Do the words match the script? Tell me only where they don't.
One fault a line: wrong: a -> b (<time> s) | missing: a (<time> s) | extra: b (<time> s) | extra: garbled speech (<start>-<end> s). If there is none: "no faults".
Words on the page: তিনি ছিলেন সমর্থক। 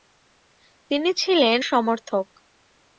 no faults